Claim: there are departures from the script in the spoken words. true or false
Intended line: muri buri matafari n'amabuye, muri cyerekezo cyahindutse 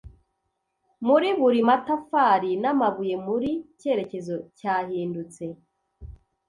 false